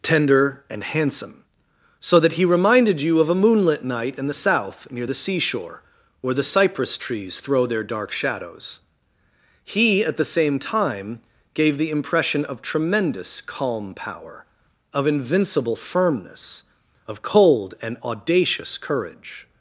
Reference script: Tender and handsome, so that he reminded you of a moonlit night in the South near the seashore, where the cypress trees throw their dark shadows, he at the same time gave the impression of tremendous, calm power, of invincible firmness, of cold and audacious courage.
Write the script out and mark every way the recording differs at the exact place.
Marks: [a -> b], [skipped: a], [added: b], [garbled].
Tender and handsome, so that he reminded you of a moonlit night in the South near the seashore, where the cypress trees throw their dark shadows, he at the same time gave the impression of tremendous, calm power, of invincible firmness, of cold and audacious courage.